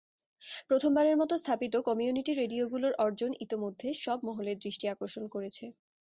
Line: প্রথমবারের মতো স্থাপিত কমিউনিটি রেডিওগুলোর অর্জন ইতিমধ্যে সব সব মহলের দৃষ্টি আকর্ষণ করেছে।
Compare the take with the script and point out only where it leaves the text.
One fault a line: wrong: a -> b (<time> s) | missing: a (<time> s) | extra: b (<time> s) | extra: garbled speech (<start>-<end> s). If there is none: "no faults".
missing: সব (4.2 s)